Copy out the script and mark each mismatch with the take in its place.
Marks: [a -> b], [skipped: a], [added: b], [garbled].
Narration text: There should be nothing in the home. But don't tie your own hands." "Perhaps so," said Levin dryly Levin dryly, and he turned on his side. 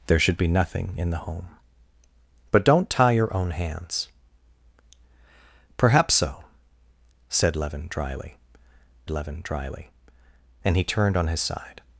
There should be nothing in the home. But don't tie your own hands." "Perhaps so," said Levin dryly Levin dryly, and he turned on his side.